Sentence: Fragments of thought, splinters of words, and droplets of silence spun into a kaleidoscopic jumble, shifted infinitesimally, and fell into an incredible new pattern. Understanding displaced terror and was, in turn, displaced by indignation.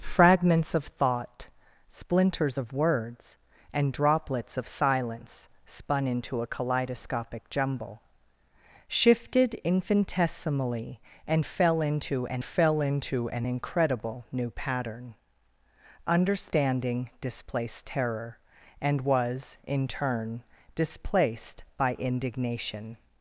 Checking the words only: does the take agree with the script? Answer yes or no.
no